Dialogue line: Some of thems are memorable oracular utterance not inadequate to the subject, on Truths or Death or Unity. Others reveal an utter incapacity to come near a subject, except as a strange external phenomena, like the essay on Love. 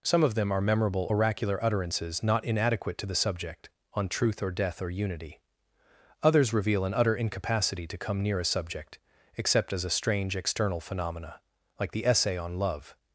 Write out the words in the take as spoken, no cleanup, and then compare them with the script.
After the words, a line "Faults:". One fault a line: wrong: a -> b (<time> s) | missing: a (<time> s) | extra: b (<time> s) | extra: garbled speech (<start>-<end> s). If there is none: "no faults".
Some of them are memorable oracular utterances not inadequate to the subject, on Truth or Death or Unity. Others reveal an utter incapacity to come near a subject, except as a strange external phenomena, like the essay on Love.
Faults:
wrong: thems -> them (0.3 s)
wrong: utterance -> utterances (1.6 s)
wrong: Truths -> Truth (4.1 s)